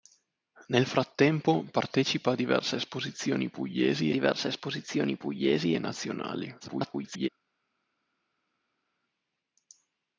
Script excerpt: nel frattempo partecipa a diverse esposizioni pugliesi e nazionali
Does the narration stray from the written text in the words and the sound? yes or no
yes